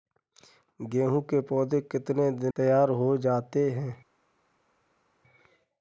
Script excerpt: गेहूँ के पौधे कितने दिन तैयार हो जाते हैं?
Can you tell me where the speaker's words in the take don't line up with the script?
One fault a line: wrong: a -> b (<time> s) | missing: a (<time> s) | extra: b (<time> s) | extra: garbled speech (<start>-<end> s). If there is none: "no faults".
no faults